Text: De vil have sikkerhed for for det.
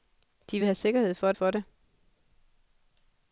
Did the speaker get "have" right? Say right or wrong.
right